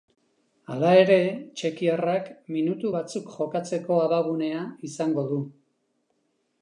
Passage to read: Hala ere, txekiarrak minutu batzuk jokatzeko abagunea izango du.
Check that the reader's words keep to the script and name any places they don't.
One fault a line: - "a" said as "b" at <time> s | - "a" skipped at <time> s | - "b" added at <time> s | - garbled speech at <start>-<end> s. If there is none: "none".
none